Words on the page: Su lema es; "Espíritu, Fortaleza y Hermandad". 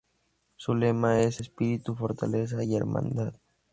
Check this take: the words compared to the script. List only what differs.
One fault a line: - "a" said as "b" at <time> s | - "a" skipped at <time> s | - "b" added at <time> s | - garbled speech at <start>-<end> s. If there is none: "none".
none